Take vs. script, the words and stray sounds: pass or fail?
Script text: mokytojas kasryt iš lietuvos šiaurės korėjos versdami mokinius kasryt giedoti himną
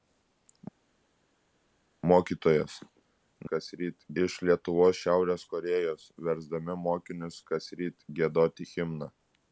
pass